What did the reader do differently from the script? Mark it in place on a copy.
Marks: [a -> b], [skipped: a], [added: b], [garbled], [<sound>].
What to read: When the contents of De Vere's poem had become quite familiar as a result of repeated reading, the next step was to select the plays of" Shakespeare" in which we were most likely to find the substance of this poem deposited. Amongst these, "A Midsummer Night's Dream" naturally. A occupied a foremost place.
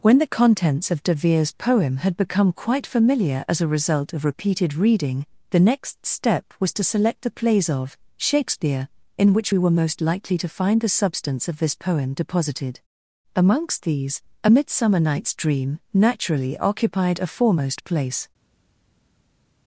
When the contents of De Vere's poem had become quite familiar as a result of repeated reading, the next step was to select the plays of" Shakespeare" in which we were most likely to find the substance of this poem deposited. Amongst these, "A Midsummer Night's Dream" naturally. [skipped: A] occupied a foremost place.